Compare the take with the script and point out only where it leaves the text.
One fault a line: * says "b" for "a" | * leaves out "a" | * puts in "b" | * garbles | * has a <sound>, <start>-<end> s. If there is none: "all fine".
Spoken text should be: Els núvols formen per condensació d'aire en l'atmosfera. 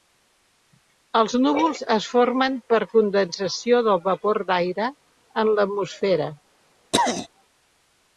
* puts in "es"
* puts in "del vapor"
* has a throat clearing, 6.9-7.3 s